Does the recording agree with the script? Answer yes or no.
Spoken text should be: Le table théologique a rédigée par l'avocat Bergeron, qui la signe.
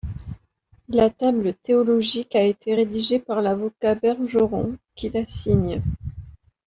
no